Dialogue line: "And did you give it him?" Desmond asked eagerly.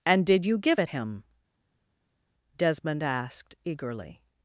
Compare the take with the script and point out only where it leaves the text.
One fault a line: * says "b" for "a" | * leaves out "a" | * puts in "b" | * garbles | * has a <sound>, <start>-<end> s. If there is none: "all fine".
all fine